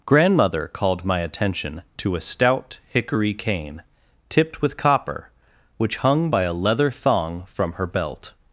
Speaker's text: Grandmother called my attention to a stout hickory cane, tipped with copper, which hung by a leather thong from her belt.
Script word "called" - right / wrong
right